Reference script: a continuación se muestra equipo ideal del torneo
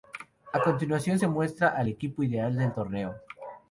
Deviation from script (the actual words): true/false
true